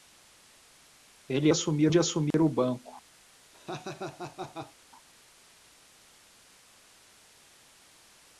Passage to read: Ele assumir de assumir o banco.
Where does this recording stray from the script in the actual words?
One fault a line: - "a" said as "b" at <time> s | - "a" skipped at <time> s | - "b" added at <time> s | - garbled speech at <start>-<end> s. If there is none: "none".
none